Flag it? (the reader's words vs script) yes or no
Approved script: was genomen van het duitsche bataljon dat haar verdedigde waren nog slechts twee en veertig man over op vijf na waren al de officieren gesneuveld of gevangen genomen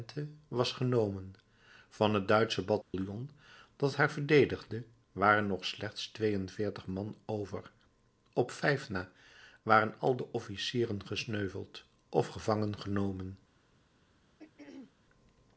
no